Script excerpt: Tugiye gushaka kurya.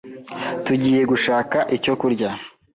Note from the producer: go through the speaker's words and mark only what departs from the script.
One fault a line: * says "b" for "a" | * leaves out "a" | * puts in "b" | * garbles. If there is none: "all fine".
* puts in "icyo"